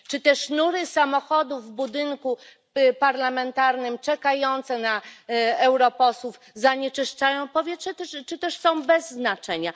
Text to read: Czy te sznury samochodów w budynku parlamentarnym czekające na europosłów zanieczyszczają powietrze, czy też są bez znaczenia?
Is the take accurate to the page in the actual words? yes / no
yes